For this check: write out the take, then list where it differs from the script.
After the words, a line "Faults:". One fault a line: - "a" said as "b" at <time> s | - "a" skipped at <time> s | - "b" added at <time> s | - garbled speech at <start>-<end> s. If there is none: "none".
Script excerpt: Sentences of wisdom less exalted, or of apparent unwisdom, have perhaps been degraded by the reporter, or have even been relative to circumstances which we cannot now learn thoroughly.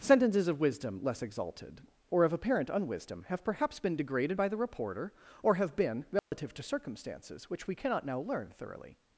Sentences of wisdom less exalted, or of apparent unwisdom, have perhaps been degraded by the reporter, or have been relative to circumstances which we cannot now learn thoroughly.
Faults:
- "even" skipped at 5.7 s